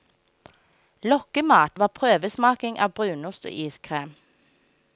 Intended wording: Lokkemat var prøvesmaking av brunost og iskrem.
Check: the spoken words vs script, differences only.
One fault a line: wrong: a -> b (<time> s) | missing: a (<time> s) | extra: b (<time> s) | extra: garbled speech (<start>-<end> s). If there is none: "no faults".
no faults